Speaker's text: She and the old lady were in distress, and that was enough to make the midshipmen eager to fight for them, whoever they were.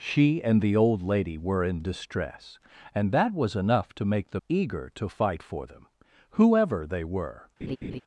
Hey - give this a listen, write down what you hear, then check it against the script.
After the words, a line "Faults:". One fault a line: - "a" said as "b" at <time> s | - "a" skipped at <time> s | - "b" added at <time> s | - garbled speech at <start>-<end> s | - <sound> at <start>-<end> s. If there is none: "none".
She and the old lady were in distress, and that was enough to make the eager to fight for them, whoever they were.
Faults:
- "midshipmen" skipped at 4.4 s
- laugh at 7.6-8.0 s